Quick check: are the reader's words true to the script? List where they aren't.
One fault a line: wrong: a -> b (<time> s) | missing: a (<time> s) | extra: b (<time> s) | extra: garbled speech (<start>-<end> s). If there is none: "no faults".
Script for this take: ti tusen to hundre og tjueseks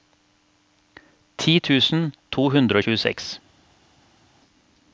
no faults